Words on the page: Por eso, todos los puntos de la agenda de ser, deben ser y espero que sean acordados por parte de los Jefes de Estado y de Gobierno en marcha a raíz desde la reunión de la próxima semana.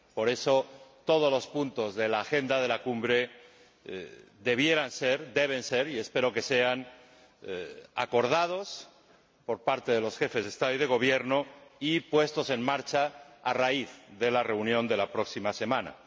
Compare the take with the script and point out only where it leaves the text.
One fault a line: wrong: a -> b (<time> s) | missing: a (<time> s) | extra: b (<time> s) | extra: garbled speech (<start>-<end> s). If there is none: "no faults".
extra: la cumbre debieran (2.7 s)
extra: y puestos (11.8 s)
wrong: desde -> de (14.2 s)